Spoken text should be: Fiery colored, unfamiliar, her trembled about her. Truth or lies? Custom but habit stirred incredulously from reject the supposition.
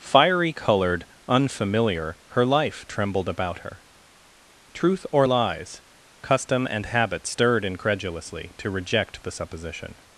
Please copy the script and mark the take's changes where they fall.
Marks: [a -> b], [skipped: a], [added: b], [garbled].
Fiery colored, unfamiliar, her [added: life] trembled about her. Truth or lies? Custom [but -> and] habit stirred incredulously [from -> to] reject the supposition.